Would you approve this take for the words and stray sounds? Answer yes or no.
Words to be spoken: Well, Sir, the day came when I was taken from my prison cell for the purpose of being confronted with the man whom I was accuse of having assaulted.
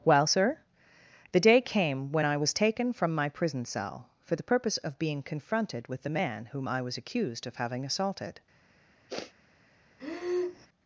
no